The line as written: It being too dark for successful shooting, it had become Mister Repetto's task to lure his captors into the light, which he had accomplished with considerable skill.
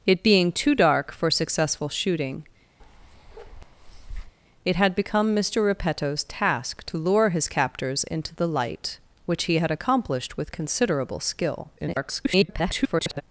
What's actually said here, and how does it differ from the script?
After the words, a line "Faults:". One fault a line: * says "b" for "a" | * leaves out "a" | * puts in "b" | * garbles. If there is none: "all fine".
It being too dark for successful shooting, it had become Mister Repetto's task to lure his captors into the light, which he had accomplished with considerable skill. [garbled]
Faults:
* garbles